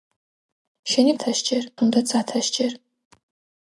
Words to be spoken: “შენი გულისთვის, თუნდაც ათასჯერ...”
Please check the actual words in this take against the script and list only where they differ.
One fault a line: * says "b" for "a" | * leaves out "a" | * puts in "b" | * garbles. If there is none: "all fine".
* says "ათასჯერ" for "გულისთვის"